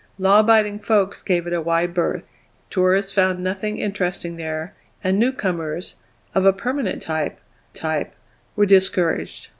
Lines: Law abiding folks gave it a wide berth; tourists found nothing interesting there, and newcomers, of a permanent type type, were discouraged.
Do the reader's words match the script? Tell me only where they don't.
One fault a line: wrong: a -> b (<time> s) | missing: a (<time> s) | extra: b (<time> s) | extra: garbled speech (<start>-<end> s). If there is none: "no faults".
no faults